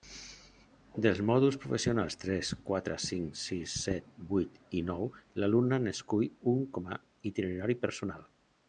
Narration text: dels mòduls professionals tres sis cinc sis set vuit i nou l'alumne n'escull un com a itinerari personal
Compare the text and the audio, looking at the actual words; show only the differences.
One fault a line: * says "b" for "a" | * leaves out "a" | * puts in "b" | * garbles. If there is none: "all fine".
* says "quatre" for "sis"